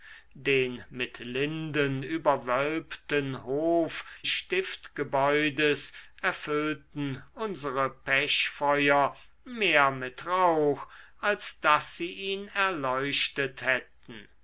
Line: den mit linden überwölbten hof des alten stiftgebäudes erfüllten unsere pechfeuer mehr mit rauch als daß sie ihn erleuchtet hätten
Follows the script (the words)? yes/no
no